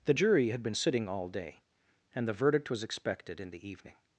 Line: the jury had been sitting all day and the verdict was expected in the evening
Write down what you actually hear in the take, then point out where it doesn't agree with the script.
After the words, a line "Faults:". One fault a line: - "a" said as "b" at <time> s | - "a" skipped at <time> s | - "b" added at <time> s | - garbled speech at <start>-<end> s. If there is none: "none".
the jury had been sitting all day and the verdict was expected in the evening
Faults:
none